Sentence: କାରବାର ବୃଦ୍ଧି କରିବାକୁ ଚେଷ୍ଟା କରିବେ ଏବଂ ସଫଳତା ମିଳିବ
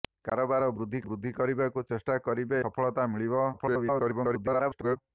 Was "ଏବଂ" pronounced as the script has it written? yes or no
no